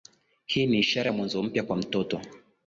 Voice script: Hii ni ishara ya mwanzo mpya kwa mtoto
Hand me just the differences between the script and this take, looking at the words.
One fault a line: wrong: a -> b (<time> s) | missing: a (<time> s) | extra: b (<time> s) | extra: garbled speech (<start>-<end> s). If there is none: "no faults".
no faults